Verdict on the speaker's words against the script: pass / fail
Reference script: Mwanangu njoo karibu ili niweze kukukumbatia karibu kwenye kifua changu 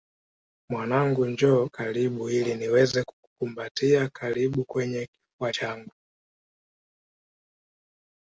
pass